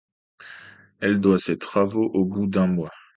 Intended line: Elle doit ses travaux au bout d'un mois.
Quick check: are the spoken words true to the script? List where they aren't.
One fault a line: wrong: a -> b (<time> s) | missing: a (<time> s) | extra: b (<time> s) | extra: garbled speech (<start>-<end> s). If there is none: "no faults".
no faults